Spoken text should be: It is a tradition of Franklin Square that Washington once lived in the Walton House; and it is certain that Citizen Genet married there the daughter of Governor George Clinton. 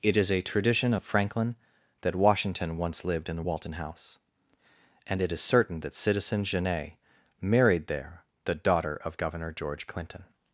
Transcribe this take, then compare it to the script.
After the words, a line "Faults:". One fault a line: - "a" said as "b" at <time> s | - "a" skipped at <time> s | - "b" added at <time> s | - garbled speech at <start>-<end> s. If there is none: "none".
It is a tradition of Franklin that Washington once lived in the Walton House; and it is certain that Citizen Genet married there the daughter of Governor George Clinton.
Faults:
- "Square" skipped at 1.6 s